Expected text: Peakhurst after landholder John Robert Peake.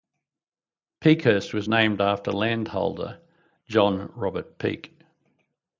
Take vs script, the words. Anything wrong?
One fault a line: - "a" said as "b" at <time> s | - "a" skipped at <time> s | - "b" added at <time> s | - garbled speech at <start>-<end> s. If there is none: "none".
- "was named" added at 1.5 s